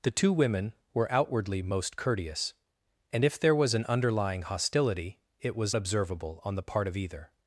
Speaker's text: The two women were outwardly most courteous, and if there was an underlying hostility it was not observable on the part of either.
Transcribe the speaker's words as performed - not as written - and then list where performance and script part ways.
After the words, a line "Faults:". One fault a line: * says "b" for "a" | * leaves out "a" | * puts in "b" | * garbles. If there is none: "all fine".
The two women were outwardly most courteous, and if there was an underlying hostility it was observable on the part of either.
Faults:
* leaves out "not"